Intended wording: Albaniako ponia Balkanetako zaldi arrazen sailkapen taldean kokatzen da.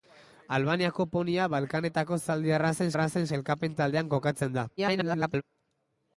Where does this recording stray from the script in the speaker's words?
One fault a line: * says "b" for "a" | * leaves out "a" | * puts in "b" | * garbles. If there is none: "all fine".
* puts in "arrazen"
* garbles